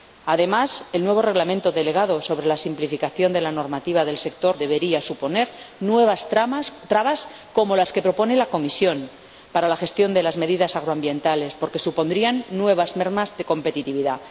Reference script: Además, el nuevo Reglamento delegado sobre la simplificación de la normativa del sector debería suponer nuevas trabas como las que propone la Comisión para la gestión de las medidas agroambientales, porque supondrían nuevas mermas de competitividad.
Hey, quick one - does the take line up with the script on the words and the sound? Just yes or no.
yes